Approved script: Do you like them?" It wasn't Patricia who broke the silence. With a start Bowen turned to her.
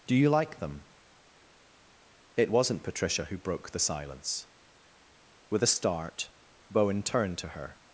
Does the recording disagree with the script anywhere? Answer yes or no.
no